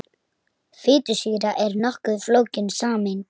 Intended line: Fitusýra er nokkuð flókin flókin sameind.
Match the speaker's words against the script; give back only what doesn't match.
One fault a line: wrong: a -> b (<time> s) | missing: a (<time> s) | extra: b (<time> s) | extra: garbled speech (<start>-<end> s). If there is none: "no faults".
missing: flókin (2.7 s)